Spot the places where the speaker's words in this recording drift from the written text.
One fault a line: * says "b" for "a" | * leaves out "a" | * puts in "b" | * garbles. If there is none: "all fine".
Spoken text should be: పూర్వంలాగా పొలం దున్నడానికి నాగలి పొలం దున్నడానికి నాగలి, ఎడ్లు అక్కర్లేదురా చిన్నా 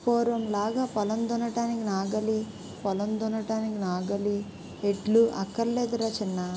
all fine